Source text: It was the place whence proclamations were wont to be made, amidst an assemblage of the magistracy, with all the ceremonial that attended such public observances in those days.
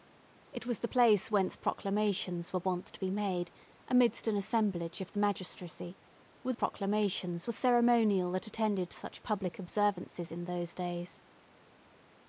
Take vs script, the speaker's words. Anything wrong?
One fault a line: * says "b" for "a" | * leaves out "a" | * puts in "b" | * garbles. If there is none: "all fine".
* says "proclamations" for "all"